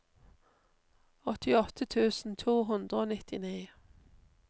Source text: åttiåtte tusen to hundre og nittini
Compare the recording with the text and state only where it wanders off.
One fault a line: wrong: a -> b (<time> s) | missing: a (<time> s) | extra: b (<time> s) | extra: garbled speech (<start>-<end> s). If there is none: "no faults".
no faults